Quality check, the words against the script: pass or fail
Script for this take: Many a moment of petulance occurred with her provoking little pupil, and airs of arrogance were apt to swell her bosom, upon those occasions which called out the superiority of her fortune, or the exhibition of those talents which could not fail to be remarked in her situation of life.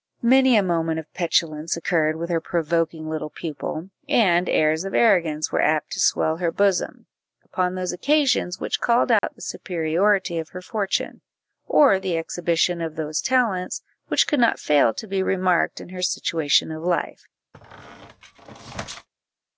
pass